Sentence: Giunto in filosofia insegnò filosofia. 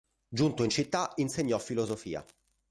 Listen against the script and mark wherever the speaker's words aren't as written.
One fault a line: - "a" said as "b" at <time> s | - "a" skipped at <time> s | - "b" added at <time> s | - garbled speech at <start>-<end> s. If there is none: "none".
- "filosofia" said as "città" at 0.7 s